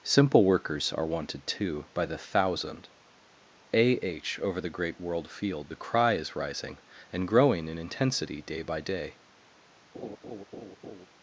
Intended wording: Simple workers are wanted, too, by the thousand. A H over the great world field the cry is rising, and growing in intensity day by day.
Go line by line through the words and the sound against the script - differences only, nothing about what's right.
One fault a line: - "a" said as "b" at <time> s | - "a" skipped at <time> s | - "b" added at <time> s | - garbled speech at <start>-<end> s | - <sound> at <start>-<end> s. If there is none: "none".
- laugh at 9.9-11.1 s